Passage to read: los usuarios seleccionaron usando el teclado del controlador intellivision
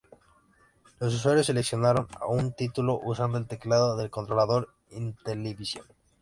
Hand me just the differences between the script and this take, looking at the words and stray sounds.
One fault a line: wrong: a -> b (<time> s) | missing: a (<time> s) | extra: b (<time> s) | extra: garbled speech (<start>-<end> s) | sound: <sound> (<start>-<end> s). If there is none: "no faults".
extra: un título (2.3 s)